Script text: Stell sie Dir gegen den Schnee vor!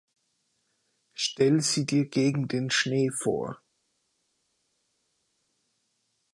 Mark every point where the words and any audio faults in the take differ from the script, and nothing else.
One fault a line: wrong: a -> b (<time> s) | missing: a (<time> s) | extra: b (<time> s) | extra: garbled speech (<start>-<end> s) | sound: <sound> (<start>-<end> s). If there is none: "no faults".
no faults